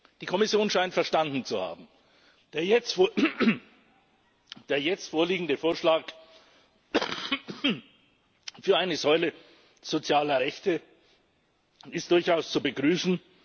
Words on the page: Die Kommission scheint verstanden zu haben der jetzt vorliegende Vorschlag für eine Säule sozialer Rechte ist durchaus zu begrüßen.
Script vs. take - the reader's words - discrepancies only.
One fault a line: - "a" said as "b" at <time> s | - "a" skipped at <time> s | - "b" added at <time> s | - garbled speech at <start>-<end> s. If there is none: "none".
none